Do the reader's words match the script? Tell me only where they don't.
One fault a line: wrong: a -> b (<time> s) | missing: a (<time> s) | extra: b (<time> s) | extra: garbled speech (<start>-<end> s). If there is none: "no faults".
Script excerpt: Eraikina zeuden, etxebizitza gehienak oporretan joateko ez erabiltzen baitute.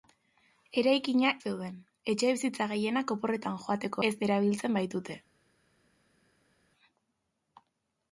no faults